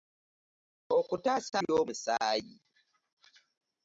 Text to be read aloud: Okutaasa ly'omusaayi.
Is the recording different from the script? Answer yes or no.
no